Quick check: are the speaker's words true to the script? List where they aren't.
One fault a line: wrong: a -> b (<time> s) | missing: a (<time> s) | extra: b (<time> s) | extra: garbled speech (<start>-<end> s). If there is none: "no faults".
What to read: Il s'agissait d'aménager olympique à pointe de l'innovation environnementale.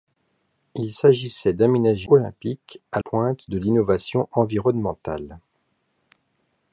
no faults